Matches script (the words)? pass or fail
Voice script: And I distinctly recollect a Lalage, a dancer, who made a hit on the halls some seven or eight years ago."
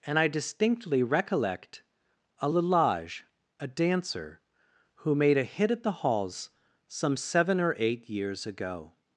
fail